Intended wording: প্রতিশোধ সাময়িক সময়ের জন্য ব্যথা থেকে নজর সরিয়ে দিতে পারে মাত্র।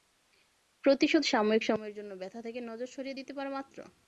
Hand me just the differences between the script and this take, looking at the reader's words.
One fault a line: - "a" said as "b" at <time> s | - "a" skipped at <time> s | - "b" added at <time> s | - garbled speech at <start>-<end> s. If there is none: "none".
none